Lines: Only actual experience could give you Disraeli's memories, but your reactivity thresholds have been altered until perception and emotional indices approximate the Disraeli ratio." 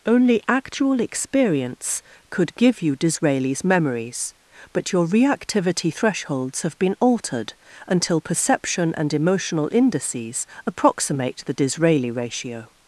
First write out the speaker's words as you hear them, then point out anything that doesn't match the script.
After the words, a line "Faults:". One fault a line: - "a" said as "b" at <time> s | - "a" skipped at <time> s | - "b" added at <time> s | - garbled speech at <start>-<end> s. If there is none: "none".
Only actual experience could give you Disraeli's memories, but your reactivity thresholds have been altered until perception and emotional indices approximate the Disraeli ratio."
Faults:
none